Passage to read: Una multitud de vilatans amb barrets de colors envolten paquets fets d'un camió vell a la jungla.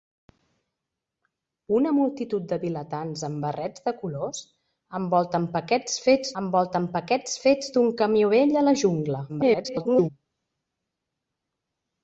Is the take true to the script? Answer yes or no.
no